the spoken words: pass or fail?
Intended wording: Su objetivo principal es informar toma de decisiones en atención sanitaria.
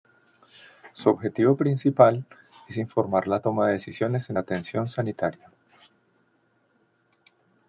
fail